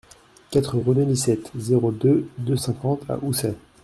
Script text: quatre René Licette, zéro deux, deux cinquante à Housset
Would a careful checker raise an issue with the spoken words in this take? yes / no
no